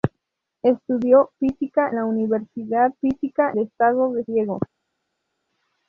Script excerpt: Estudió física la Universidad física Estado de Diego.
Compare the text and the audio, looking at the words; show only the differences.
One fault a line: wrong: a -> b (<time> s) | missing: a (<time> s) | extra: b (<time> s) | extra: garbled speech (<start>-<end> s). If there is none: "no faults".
no faults